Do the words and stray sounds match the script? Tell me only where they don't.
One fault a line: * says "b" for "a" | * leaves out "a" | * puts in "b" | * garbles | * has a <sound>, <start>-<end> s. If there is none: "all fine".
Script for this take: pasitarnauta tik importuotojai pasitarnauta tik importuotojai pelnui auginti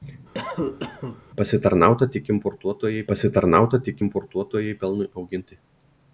* has a cough, 0.3-1.2 s